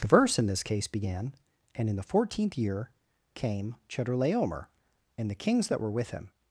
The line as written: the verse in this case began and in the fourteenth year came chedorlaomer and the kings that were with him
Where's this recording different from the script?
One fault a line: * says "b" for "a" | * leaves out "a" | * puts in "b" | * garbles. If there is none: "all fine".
all fine